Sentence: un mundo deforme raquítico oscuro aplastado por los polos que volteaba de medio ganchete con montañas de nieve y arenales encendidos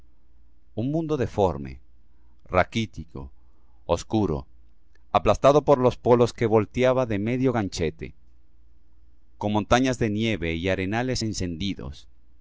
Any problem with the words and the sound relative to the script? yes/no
no